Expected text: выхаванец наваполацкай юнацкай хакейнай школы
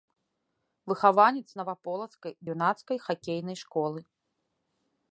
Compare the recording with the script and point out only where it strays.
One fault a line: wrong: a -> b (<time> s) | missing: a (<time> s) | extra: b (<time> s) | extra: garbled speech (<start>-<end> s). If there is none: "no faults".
no faults